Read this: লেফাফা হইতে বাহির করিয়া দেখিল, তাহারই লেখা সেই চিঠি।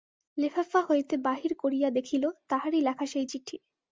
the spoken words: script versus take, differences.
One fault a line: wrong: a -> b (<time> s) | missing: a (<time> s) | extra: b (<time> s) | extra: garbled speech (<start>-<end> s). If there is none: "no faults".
no faults